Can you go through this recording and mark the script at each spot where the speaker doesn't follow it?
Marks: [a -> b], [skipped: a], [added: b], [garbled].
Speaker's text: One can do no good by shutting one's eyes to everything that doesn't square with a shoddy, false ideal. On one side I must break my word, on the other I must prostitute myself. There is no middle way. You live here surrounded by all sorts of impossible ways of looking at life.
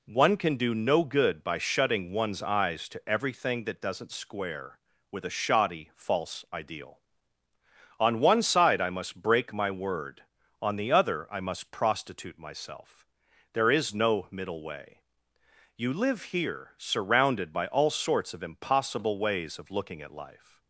One can do no good by shutting one's eyes to everything that doesn't square with a shoddy, false ideal. On one side I must break my word, on the other I must prostitute myself. There is no middle way. You live here surrounded by all sorts of impossible ways of looking at life.